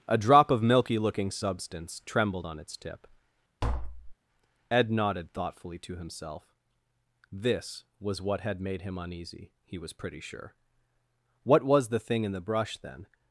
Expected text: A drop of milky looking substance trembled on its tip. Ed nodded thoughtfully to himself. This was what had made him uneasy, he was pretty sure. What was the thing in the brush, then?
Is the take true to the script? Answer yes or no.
yes